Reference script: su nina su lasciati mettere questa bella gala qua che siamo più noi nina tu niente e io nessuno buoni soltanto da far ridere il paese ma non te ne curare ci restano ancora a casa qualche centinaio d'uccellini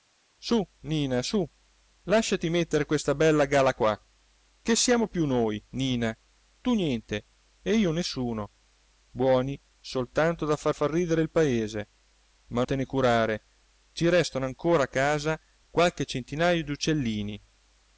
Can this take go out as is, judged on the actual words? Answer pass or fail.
fail